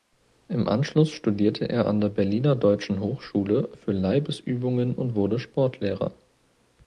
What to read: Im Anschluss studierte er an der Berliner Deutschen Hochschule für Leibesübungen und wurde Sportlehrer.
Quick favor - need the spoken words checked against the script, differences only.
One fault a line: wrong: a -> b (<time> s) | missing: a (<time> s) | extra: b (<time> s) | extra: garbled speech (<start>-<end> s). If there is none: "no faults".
no faults